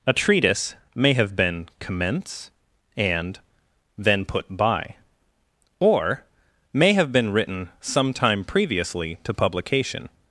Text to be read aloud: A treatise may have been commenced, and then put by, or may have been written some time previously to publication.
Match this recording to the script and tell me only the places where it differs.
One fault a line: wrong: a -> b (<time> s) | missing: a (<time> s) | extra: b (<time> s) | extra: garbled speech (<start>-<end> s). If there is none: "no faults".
wrong: commenced -> commence (1.8 s)